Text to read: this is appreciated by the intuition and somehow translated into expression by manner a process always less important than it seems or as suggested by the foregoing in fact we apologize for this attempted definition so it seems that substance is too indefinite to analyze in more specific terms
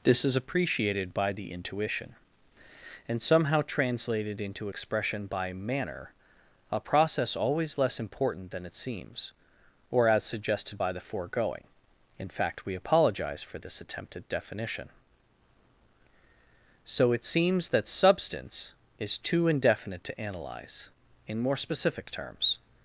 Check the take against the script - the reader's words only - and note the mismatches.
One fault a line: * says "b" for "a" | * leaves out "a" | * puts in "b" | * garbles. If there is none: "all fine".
all fine